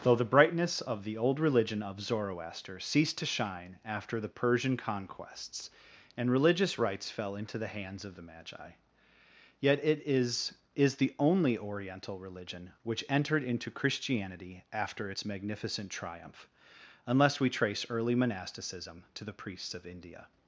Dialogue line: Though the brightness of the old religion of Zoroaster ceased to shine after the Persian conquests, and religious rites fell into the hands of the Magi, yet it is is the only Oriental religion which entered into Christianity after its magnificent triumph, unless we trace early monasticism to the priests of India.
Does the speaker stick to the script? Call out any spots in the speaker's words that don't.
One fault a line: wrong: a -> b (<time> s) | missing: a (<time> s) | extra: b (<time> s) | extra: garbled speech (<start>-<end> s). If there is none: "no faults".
no faults